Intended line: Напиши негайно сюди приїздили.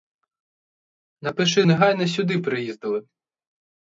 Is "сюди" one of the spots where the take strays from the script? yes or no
no